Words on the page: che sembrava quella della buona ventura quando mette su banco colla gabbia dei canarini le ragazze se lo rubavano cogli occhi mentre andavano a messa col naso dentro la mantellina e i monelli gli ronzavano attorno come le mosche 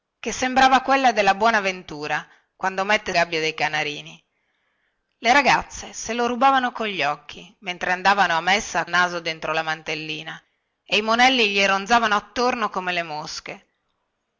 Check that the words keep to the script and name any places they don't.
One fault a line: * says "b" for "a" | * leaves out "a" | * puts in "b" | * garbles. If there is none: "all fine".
* leaves out "su banco colla"
* leaves out "col"